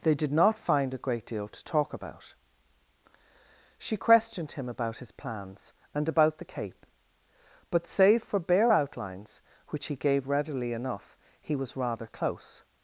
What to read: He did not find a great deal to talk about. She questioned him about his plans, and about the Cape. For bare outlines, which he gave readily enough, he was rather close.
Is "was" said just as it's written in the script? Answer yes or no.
yes